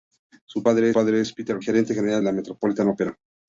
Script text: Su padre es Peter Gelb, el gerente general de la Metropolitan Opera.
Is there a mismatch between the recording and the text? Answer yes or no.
yes